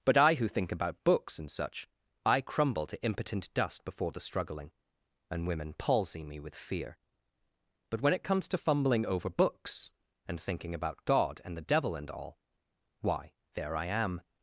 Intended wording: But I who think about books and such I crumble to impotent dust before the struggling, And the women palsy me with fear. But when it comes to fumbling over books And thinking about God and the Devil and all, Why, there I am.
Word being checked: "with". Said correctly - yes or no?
yes